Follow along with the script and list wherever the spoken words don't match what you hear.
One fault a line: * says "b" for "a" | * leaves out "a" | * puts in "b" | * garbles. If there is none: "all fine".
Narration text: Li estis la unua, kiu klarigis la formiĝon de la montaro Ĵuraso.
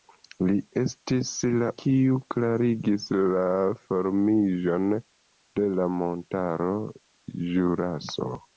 * leaves out "unua"